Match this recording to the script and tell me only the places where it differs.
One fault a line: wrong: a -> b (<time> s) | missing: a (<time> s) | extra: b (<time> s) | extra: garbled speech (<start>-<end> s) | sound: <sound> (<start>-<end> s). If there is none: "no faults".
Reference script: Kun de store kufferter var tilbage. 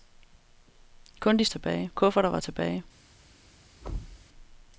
wrong: store -> tilbage (1.5 s)
sound: thud (3.8-4.3 s)